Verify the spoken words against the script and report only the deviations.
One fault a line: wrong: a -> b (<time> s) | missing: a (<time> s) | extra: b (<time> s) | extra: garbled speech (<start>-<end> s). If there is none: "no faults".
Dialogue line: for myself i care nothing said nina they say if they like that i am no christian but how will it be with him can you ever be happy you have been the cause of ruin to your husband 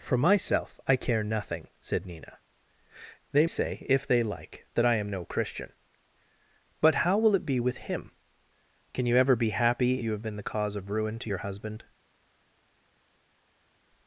no faults